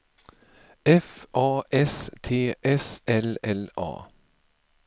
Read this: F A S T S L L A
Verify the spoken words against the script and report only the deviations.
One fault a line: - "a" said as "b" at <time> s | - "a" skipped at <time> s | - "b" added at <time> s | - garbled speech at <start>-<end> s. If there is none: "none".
none